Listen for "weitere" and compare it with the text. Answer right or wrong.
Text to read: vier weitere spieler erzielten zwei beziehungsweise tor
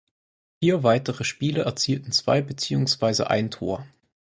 right